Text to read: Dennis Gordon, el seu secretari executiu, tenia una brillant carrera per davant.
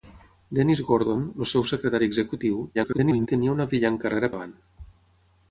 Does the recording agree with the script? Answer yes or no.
no